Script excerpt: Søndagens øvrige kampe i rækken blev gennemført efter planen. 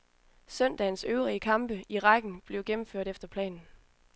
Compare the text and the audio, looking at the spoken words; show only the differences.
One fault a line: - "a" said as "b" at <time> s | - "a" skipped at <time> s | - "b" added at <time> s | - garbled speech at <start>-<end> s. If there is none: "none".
none